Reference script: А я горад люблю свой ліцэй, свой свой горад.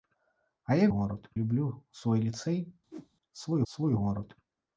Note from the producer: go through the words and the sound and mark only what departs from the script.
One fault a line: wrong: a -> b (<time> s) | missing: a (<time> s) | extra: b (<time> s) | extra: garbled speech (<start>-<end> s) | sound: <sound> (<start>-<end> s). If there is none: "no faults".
sound: whoosh (2.9-3.1 s)